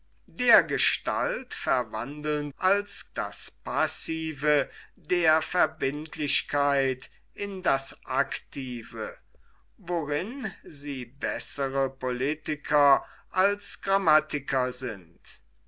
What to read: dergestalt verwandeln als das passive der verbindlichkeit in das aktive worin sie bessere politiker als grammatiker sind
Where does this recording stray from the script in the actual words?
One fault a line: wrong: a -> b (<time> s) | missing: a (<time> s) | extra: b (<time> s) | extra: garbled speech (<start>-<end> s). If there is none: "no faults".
no faults